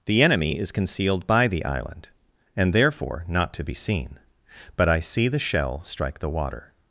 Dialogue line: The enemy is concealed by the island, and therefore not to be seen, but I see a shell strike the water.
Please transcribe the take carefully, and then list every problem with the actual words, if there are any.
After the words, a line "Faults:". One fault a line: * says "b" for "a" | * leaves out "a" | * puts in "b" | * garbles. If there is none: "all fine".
The enemy is concealed by the island, and therefore not to be seen, but I see the shell strike the water.
Faults:
* says "the" for "a"